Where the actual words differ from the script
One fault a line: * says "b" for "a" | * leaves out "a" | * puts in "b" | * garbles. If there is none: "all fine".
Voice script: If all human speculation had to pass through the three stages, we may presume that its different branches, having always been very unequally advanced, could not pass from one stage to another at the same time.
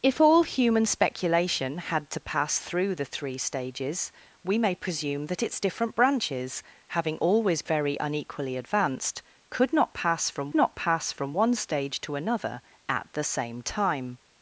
* leaves out "been"
* puts in "not pass from"